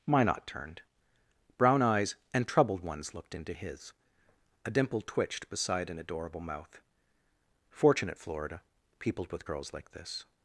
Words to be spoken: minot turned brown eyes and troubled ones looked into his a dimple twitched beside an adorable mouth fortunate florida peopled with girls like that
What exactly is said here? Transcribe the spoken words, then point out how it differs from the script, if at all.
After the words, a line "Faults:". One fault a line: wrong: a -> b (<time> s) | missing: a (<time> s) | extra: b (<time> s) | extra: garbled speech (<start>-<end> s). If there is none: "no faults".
minot turned brown eyes and troubled ones looked into his a dimple twitched beside an adorable mouth fortunate florida peopled with girls like this
Faults:
wrong: that -> this (9.9 s)